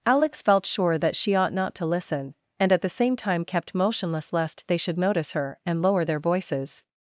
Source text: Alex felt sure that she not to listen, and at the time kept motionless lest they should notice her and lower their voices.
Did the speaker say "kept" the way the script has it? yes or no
yes